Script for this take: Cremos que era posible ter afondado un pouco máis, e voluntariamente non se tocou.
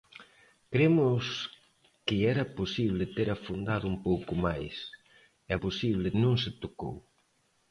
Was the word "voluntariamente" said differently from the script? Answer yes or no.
yes